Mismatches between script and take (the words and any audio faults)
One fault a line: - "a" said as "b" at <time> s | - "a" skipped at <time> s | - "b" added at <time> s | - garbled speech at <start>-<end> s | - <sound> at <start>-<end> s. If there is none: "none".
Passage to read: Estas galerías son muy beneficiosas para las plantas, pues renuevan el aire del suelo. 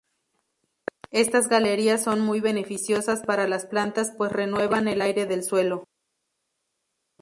none